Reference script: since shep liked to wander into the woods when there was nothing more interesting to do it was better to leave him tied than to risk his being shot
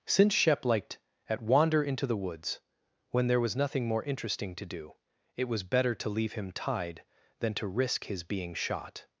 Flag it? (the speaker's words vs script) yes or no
yes